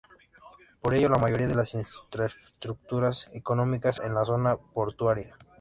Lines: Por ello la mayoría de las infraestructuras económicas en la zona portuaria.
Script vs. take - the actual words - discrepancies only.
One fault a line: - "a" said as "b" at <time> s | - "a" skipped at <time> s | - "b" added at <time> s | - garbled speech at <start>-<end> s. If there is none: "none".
none